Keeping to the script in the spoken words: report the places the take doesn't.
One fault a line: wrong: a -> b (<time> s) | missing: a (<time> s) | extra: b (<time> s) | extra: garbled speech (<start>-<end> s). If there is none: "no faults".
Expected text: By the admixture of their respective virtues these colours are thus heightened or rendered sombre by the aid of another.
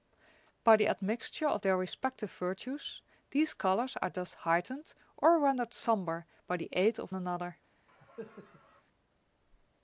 no faults